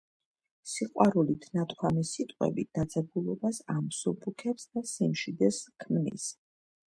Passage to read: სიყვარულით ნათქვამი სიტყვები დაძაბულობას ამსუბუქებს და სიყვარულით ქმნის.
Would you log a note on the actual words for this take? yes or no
yes